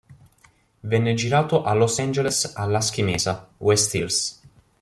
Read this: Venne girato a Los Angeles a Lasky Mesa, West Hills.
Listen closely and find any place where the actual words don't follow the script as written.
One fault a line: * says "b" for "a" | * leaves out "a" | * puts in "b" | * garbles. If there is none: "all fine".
all fine